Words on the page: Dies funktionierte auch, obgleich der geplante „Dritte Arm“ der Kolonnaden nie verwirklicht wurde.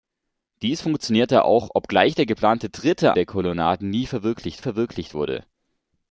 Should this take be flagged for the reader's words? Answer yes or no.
yes